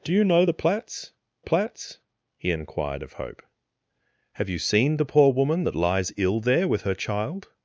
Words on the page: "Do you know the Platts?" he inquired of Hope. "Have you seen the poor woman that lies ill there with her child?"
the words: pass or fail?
fail